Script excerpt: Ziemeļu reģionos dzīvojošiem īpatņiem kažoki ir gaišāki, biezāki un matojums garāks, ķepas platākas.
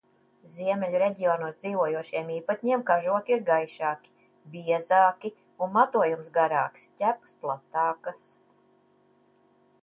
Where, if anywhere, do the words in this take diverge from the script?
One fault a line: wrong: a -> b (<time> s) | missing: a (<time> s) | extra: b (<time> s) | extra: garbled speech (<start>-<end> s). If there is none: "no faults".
no faults